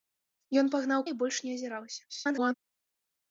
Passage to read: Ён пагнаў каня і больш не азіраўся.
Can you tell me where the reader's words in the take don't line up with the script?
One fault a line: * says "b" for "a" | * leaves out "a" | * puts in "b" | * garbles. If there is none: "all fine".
* leaves out "каня"
* garbles